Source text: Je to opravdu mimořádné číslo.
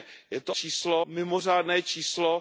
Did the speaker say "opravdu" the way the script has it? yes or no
no